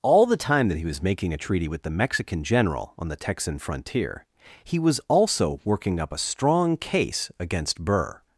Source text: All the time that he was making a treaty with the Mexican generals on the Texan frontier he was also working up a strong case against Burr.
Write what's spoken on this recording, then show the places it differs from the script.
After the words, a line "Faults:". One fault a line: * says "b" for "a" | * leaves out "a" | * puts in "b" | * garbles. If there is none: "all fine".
All the time that he was making a treaty with the Mexican general on the Texan frontier he was also working up a strong case against Burr.
Faults:
* says "general" for "generals"